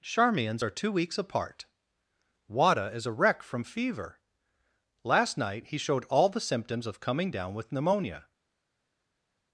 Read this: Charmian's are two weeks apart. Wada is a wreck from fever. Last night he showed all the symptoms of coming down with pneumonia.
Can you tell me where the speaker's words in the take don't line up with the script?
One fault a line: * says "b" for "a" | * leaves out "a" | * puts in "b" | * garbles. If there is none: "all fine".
all fine